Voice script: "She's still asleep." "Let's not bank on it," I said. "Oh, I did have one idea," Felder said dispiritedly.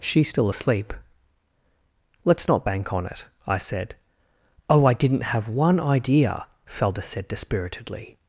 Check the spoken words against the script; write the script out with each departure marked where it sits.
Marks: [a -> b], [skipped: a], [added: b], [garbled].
"She's still asleep." "Let's not bank on it," I said. "Oh, I [did -> didn't] have one idea," Felder said dispiritedly.